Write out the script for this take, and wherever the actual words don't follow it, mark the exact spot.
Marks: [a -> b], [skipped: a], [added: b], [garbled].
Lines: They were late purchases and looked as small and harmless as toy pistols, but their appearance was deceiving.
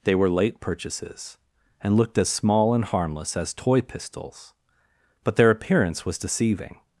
They were late purchases and looked as small and harmless as toy pistols, but their appearance was deceiving.